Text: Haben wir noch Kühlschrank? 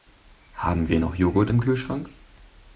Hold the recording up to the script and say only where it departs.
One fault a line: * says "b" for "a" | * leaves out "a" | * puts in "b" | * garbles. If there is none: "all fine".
* puts in "Joghurt im"